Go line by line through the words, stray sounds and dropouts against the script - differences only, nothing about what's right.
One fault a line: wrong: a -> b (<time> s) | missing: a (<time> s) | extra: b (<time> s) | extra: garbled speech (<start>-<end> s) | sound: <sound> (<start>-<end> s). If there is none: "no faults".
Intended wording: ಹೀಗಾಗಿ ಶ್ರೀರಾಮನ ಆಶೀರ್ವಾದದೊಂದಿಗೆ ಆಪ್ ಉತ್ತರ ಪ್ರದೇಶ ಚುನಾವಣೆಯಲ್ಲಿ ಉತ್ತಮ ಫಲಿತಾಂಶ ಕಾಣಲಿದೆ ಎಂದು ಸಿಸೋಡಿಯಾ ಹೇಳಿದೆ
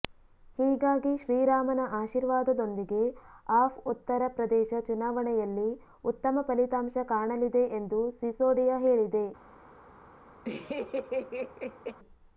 sound: laugh (10.4-12.0 s)